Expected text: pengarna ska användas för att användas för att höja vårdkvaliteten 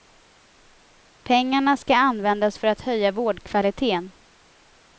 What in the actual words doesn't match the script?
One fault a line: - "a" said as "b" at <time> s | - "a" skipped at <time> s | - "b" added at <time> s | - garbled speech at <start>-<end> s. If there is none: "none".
- "användas för att" skipped at 2.8 s